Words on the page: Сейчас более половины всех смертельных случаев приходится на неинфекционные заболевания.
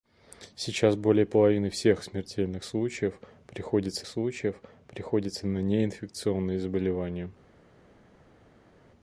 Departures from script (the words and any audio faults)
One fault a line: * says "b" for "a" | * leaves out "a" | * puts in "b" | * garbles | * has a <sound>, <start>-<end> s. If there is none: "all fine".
* puts in "случаев приходится"